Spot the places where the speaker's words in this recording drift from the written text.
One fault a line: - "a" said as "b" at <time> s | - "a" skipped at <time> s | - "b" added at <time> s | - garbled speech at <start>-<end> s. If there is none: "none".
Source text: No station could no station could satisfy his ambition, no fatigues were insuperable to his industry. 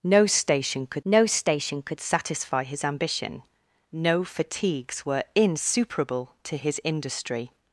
none